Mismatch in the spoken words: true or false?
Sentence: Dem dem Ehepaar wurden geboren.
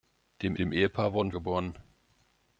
false